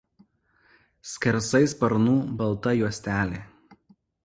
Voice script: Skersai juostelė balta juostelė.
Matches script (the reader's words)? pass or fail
fail